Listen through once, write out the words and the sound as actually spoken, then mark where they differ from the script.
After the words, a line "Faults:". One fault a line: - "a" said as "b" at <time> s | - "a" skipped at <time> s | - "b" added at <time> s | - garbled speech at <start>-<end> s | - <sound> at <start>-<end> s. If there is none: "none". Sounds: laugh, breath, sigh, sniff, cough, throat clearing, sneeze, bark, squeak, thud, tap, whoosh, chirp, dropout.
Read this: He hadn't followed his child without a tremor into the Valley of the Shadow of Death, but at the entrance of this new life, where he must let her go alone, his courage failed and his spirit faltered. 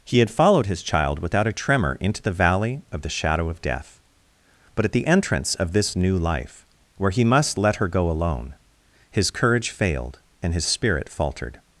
He had followed his child without a tremor into the Valley of the Shadow of Death, but at the entrance of this new life, where he must let her go alone, his courage failed and his spirit faltered.
Faults:
- "hadn't" said as "had" at 0.2 s